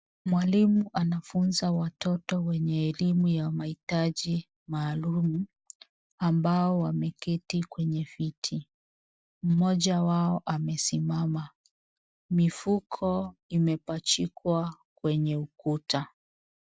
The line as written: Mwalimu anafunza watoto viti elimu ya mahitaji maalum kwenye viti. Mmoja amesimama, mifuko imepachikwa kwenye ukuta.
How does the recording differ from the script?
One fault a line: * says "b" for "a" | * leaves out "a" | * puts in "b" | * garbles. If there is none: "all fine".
* says "wenye" for "viti"
* puts in "ambao wameketi"
* puts in "wao"